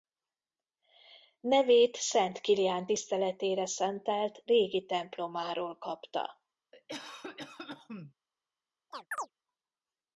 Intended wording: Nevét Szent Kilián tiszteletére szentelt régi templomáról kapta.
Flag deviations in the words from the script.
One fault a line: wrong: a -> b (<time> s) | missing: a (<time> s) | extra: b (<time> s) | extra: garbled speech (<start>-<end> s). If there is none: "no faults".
no faults